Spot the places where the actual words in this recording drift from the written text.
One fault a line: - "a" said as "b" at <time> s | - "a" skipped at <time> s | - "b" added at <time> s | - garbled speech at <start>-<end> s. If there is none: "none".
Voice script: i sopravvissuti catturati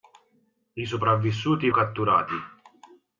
none